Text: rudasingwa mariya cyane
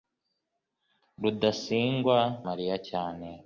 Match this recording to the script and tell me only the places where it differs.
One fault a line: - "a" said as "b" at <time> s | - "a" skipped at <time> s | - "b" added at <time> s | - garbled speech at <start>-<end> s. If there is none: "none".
none